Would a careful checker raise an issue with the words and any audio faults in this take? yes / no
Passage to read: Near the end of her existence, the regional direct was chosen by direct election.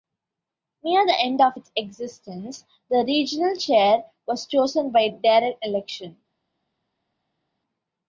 yes